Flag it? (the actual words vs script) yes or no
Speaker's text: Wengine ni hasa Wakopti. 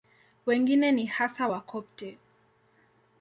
no